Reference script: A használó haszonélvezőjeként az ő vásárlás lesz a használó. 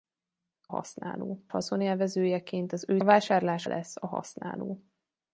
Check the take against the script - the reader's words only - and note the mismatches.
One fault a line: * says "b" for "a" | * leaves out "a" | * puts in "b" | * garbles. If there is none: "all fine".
all fine